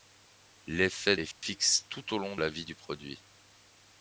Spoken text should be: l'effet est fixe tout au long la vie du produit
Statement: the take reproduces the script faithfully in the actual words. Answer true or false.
true